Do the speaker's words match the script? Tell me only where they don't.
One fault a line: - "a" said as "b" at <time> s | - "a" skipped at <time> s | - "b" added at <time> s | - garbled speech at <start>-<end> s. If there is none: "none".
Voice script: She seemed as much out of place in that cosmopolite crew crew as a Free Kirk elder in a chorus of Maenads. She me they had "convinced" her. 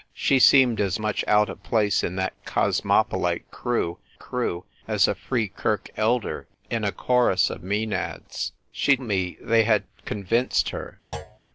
none